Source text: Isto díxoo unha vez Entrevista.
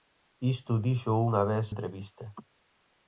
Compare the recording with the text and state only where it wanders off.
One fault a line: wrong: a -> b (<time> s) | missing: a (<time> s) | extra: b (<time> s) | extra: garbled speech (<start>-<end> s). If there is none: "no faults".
no faults